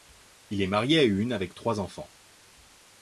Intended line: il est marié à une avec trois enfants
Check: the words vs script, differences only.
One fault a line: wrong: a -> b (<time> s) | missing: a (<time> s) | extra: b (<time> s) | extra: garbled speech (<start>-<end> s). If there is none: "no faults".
no faults